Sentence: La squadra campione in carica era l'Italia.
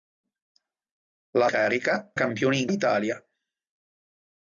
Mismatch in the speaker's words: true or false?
true